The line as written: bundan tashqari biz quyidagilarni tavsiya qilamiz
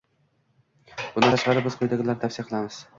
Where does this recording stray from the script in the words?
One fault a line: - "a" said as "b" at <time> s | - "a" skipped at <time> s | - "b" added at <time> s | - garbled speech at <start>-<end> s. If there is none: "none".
none